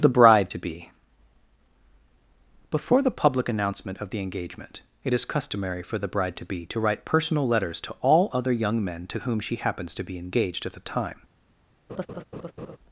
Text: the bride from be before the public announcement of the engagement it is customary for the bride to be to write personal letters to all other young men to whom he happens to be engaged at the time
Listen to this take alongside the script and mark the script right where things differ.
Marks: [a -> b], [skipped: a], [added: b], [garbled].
the bride [from -> to] be before the public announcement of the engagement it is customary for the bride to be to write personal letters to all other young men to whom [he -> she] happens to be engaged at the time